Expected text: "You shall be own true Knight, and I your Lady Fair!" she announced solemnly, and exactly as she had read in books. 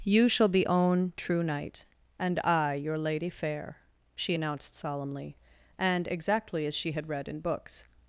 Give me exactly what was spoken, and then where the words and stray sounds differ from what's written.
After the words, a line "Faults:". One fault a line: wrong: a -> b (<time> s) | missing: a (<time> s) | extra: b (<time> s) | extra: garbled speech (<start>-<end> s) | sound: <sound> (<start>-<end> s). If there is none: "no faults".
"You shall be own true Knight, and I your Lady Fair!" she announced solemnly, and exactly as she had read in books.
Faults:
no faults